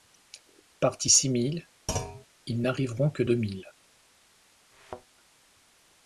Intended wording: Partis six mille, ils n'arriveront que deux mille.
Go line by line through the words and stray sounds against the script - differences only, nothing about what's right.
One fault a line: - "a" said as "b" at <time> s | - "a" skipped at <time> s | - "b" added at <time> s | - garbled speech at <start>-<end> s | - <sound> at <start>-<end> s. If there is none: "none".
- thud at 1.9-2.3 s
- thud at 4.7-5.1 s